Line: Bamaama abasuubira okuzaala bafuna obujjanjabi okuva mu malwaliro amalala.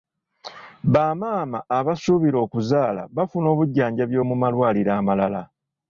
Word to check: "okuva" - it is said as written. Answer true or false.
false